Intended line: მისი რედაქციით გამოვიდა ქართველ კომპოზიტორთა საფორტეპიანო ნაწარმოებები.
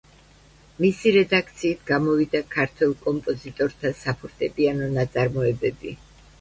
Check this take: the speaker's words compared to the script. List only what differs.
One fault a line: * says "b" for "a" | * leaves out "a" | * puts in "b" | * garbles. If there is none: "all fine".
all fine